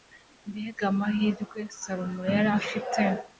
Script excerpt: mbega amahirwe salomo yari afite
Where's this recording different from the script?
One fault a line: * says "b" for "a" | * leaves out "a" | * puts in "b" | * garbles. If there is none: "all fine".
all fine